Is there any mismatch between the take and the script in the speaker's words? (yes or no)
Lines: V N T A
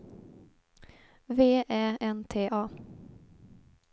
yes